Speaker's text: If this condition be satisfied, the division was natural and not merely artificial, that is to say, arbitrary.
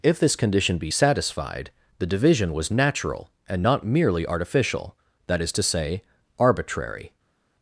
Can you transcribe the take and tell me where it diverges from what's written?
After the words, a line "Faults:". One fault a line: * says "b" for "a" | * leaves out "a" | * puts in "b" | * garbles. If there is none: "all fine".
If this condition be satisfied, the division was natural and not merely artificial, that is to say, arbitrary.
Faults:
all fine